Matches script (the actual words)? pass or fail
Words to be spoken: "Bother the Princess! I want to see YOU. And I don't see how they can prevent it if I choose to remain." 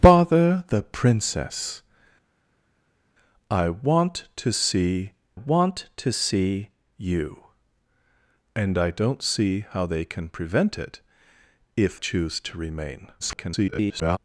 fail